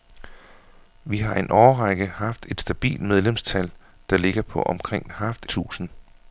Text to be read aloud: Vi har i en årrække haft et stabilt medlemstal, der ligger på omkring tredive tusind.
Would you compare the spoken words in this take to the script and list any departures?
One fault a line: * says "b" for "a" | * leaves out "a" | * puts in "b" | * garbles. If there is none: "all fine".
* says "haft" for "tredive"